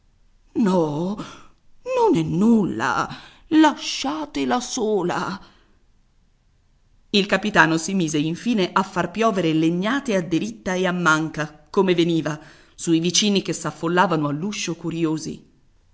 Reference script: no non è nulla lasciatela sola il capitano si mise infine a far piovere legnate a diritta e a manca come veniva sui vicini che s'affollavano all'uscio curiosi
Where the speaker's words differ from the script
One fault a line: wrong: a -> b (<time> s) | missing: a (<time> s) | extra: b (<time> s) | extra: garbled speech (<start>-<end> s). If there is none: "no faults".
no faults